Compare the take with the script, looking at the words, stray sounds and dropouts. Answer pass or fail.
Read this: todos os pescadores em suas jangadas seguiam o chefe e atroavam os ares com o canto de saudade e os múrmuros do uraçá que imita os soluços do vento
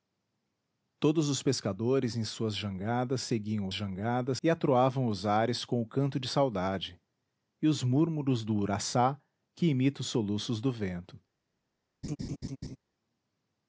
fail